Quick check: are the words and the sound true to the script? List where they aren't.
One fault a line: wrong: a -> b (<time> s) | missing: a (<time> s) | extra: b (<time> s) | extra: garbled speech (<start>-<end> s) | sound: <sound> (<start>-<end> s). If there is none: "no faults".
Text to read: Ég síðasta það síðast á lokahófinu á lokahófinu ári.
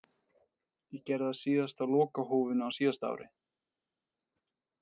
wrong: síðasta -> gerði (1.1 s)
wrong: lokahófinu -> síðasta (2.8 s)